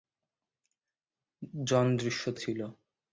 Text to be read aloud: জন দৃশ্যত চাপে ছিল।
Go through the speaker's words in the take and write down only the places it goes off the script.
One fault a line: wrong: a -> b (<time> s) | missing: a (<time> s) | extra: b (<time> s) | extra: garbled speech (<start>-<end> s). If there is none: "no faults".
missing: চাপে (2.4 s)